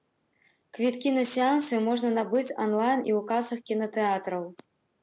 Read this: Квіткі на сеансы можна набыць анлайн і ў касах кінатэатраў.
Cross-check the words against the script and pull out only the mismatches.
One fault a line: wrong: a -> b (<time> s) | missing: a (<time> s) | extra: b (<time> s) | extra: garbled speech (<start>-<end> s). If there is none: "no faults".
no faults